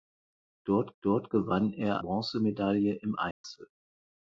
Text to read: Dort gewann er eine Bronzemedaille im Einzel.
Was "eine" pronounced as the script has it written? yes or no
no